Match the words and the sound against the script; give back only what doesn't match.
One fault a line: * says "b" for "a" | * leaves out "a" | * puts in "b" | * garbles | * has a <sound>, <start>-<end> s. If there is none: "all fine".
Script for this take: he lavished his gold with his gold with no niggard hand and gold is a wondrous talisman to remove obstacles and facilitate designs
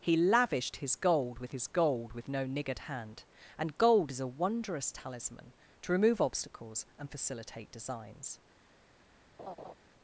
* has a laugh, 9.4-9.7 s